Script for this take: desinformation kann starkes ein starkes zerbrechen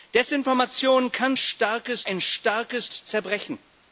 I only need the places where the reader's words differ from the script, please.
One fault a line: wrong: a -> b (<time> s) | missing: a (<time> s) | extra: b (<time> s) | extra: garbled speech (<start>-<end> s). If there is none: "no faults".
no faults